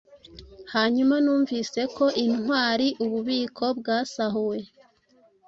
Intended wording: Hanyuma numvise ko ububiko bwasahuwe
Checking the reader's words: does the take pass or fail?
fail